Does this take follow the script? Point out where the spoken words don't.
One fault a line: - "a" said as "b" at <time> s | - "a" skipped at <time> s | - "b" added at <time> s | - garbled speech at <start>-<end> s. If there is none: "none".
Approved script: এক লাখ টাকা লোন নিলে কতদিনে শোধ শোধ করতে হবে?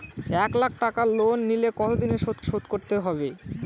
none